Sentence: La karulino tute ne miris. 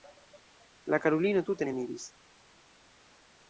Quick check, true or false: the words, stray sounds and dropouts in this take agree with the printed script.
true